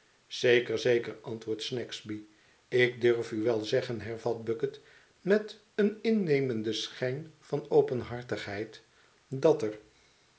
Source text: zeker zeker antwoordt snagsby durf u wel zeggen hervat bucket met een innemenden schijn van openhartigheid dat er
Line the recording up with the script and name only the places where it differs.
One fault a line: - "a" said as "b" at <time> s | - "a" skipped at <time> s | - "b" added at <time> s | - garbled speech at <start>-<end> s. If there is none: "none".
- "ik" added at 2.7 s